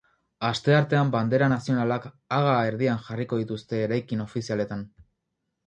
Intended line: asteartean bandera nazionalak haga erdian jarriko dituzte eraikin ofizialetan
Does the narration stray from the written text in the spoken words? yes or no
no